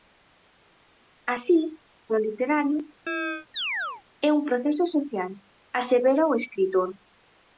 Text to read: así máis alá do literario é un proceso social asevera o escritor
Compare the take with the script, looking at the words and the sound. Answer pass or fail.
fail